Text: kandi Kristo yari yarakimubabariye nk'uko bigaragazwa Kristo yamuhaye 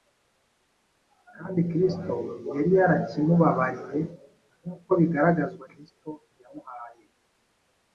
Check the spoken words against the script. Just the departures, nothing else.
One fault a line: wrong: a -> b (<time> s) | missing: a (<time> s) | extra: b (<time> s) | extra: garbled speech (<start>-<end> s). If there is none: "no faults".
no faults